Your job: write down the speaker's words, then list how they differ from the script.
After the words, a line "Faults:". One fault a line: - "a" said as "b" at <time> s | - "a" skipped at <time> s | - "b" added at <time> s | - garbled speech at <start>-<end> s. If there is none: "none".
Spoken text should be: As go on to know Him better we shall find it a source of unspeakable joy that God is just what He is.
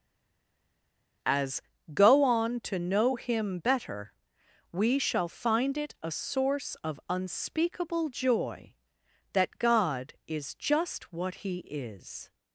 As go on to know Him better we shall find it a source of unspeakable joy that God is just what He is.
Faults:
none